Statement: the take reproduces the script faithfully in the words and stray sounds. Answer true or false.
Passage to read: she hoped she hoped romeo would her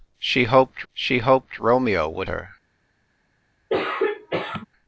false